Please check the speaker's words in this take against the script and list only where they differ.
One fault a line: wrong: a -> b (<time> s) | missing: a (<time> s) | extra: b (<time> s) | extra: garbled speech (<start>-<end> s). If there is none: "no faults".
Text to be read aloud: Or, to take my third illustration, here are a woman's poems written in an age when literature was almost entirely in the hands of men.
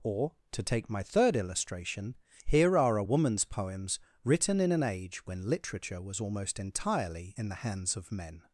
no faults